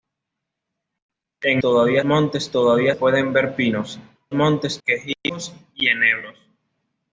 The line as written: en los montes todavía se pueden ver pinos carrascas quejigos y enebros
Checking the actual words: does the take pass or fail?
fail